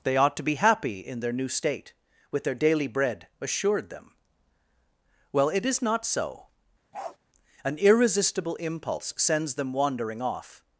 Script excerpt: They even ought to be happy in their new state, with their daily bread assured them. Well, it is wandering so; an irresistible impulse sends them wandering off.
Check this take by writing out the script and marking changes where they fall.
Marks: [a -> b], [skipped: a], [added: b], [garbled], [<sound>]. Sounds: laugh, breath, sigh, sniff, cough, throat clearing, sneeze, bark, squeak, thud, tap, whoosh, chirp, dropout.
They [skipped: even] ought to be happy in their new state, with their daily bread assured them. Well, it is [wandering -> not] so; [bark] an irresistible impulse sends them wandering off.